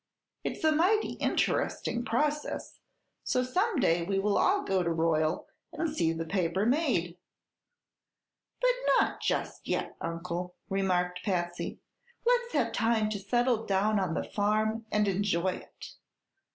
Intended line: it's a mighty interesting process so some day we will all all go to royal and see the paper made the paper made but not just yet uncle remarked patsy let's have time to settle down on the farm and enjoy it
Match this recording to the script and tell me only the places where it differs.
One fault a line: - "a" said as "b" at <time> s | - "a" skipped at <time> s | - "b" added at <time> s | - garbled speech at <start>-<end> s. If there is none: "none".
- "all" skipped at 4.6 s
- "the paper made" skipped at 7.2 s